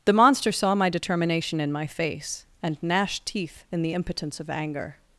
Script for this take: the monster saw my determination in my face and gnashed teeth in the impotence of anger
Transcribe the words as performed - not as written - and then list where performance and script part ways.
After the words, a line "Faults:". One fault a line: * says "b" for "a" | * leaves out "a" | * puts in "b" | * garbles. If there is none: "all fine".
the monster saw my determination in my face and gnashed teeth in the impotence of anger
Faults:
all fine